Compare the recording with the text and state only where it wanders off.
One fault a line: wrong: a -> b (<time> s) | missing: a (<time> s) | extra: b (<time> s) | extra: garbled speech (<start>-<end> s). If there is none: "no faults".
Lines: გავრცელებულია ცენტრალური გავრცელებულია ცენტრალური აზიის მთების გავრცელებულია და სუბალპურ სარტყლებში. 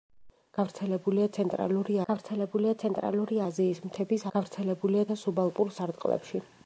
no faults